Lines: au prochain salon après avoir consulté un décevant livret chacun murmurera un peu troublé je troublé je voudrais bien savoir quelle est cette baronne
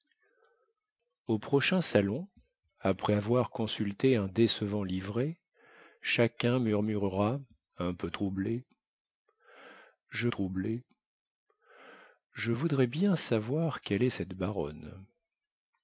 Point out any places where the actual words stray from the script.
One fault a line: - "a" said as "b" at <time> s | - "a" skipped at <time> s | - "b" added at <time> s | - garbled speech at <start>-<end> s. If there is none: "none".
none